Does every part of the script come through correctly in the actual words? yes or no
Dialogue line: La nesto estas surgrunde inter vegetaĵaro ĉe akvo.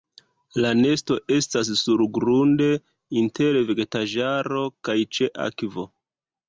no